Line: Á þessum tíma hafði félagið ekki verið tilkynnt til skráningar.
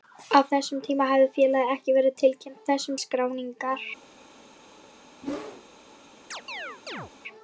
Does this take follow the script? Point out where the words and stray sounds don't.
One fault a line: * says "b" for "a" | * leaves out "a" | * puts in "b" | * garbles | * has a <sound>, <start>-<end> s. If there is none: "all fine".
* says "þessum" for "til"
* has a whoosh, 5.2-5.6 s
* has a chirp, 6.3-7.1 s